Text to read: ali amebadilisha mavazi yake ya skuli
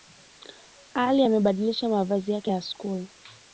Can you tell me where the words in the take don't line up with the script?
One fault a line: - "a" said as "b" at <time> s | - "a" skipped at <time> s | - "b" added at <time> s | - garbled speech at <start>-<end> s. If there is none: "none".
none